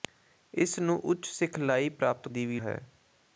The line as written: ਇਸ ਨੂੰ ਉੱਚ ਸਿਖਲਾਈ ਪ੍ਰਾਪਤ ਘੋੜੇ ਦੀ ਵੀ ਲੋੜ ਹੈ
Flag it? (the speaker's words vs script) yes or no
yes